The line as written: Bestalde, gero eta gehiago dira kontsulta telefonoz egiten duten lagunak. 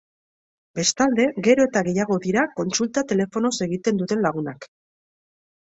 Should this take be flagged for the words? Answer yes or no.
no